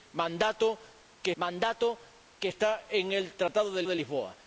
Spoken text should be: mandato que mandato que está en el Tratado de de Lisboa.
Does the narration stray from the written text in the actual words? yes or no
no